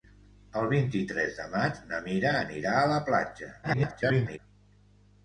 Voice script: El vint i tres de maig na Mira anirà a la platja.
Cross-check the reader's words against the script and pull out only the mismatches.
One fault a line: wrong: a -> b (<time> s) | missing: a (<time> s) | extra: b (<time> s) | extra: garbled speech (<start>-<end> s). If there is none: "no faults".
extra: garbled speech (3.6-4.4 s)